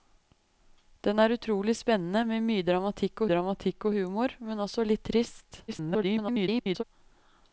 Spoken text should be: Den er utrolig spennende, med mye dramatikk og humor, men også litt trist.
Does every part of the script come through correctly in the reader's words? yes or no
no